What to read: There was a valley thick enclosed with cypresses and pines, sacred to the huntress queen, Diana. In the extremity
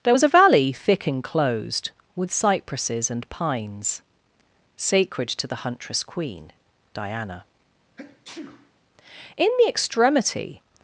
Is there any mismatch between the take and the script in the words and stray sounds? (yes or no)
yes